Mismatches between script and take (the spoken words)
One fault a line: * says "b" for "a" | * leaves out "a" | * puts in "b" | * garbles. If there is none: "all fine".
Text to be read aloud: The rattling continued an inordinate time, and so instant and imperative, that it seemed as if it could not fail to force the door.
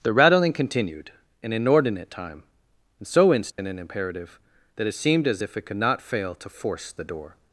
all fine